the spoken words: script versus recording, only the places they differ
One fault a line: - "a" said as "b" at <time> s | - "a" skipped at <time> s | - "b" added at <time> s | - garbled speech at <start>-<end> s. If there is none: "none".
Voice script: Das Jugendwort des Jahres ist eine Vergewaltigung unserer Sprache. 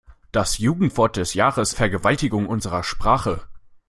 - "ist eine" skipped at 1.7 s